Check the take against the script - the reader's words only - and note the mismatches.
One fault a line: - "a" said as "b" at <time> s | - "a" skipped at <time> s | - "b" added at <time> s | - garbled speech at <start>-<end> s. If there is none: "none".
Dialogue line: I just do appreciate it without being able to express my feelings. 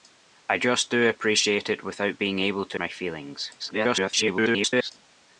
- "express" skipped at 2.8 s
- garbled speech at 3.6-4.9 s